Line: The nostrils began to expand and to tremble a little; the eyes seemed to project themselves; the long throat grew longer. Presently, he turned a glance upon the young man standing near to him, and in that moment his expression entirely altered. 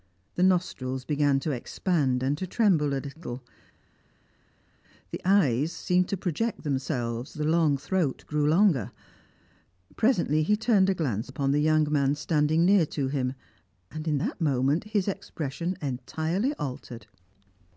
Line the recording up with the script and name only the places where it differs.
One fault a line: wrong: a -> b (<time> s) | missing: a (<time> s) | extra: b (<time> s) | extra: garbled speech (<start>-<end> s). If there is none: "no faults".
no faults